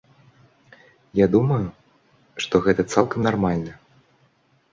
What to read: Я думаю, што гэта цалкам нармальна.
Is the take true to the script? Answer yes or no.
yes